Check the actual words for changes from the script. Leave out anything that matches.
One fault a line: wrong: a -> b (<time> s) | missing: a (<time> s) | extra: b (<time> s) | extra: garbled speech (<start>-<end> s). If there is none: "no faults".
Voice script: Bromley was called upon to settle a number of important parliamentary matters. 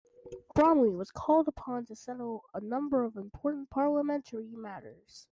no faults